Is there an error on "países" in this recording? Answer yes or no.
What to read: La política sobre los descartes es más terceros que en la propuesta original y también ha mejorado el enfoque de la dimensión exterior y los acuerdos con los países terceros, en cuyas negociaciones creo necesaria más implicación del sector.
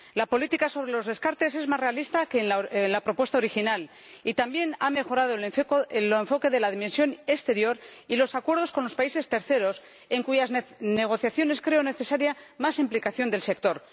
no